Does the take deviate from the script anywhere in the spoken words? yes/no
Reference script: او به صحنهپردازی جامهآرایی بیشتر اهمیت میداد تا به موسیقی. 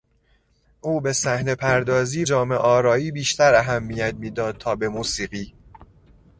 no